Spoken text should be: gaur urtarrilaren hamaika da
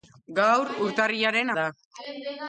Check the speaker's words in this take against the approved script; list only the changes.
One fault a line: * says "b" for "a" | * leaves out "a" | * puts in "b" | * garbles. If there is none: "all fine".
* leaves out "hamaika"